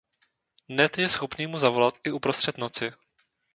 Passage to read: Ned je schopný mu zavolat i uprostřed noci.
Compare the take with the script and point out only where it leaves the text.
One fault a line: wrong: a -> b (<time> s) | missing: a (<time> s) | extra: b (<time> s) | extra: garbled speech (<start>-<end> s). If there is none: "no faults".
no faults